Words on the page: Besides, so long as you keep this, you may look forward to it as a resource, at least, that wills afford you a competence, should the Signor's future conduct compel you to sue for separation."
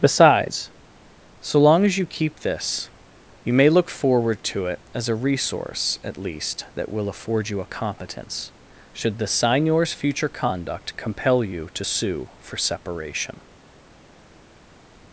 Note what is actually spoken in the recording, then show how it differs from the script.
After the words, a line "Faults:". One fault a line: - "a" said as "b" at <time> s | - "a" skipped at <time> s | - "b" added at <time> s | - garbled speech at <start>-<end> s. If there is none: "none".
Besides, so long as you keep this, you may look forward to it as a resource, at least, that will afford you a competence, should the Signor's future conduct compel you to sue for separation."
Faults:
- "wills" said as "will" at 6.9 s